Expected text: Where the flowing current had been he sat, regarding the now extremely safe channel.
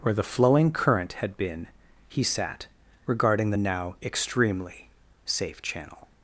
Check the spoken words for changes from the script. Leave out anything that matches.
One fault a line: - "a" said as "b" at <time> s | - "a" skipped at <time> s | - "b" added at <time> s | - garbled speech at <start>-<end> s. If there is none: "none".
none